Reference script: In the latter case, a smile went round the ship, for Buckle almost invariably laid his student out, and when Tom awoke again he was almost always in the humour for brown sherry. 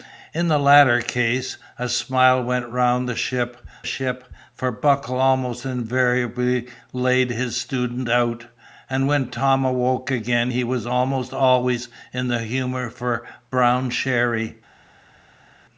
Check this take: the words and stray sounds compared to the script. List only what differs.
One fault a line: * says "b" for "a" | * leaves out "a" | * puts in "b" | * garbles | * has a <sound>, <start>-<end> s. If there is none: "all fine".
* puts in "ship"